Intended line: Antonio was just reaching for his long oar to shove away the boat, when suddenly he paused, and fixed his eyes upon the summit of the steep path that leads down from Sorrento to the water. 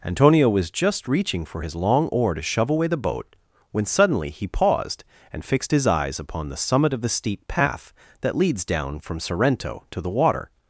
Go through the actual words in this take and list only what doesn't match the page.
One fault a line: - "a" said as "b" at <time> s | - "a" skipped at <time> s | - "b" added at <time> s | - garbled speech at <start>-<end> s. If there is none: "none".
none